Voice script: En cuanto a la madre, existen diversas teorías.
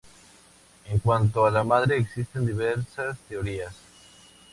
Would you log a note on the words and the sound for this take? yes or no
no